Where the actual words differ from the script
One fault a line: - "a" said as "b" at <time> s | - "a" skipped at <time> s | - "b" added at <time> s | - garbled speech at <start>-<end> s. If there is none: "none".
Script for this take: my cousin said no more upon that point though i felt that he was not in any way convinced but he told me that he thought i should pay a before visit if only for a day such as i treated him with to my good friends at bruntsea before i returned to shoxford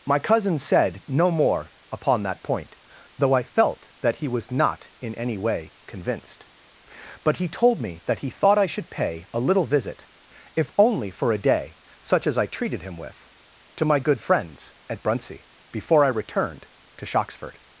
- "before" said as "little" at 9.4 s